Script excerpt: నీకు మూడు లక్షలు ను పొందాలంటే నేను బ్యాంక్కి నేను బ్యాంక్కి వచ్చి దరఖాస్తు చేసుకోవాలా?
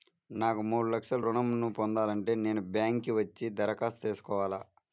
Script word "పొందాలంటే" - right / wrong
right